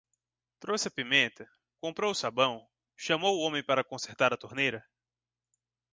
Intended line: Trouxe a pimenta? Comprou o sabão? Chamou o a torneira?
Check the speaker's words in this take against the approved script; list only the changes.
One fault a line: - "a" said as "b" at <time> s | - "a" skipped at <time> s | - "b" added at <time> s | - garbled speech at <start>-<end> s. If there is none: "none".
- "homem para consertar" added at 3.4 s